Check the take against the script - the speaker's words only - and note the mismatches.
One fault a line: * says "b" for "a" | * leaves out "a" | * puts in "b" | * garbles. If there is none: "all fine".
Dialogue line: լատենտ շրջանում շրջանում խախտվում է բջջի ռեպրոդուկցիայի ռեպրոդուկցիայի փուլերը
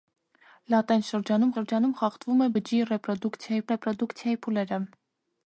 all fine